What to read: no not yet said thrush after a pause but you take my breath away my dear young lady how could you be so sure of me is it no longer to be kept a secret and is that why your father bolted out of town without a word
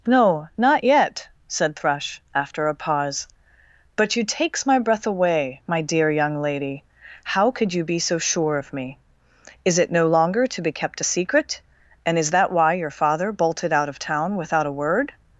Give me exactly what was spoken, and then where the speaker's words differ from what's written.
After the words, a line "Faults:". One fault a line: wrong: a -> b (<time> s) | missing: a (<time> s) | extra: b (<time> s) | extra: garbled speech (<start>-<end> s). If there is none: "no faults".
no not yet said thrush after a pause but you takes my breath away my dear young lady how could you be so sure of me is it no longer to be kept a secret and is that why your father bolted out of town without a word
Faults:
wrong: take -> takes (4.2 s)